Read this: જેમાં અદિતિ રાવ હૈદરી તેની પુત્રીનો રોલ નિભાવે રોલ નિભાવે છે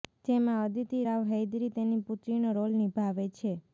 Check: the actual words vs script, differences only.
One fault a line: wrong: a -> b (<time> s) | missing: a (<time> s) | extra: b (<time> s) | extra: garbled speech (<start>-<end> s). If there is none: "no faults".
missing: રોલ નિભાવે (3.3 s)